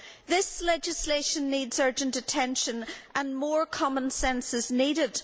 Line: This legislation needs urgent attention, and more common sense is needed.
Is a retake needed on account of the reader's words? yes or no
no